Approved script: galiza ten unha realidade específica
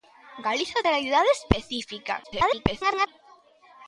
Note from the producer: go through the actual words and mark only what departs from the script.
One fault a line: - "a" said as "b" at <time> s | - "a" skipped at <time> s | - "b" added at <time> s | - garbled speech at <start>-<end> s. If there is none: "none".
- "ten unha" skipped at 0.8 s
- garbled speech at 2.2-3.1 s